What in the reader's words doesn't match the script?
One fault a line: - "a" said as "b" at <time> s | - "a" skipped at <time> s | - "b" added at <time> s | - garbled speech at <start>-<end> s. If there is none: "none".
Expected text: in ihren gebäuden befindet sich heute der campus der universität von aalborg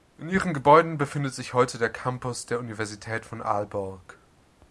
none